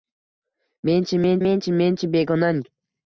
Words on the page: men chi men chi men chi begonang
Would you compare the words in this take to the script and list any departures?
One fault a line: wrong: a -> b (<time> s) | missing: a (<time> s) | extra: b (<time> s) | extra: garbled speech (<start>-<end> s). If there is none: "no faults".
extra: men (1.4 s)